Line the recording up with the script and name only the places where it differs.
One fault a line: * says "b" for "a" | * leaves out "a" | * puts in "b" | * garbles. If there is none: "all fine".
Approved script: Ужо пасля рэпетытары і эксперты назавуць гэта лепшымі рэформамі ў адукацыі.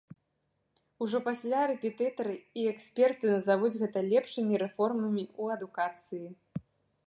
all fine